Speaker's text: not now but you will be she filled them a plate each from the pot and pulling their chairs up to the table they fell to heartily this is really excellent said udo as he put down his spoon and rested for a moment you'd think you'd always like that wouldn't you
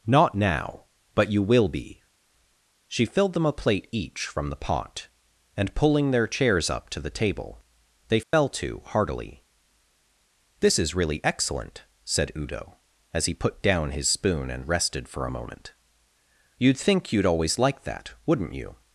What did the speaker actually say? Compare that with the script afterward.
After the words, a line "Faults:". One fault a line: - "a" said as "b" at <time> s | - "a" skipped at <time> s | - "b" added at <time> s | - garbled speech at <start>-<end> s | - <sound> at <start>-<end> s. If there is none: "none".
not now but you will be she filled them a plate each from the pot and pulling their chairs up to the table they fell to heartily this is really excellent said udo as he put down his spoon and rested for a moment you'd think you'd always like that wouldn't you
Faults:
- dropout at 8.2-8.3 s